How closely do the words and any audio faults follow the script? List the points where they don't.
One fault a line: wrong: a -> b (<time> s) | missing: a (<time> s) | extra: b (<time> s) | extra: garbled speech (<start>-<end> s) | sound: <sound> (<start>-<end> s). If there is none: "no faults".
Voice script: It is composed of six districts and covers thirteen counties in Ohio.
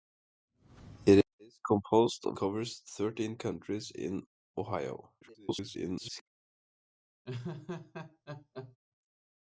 missing: six districts and (2.4 s)
extra: garbled speech (5.2-6.2 s)
sound: laugh (7.3-8.8 s)